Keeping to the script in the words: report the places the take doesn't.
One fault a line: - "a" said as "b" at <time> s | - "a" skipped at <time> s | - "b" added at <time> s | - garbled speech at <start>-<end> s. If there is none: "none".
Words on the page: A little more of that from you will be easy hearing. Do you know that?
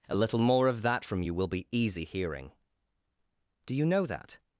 none